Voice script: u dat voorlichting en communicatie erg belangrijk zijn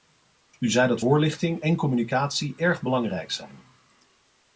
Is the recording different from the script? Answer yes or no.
yes